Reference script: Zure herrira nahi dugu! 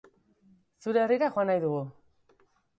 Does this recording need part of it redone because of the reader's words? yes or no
yes